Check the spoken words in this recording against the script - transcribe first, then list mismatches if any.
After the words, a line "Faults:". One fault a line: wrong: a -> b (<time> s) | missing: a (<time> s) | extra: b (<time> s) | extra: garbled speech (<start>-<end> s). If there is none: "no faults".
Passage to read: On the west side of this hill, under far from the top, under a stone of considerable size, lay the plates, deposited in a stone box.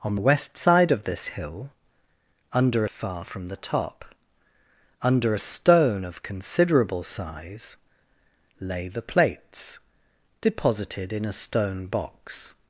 On the west side of this hill, under far from the top, under a stone of considerable size, lay the plates, deposited in a stone box.
Faults:
no faults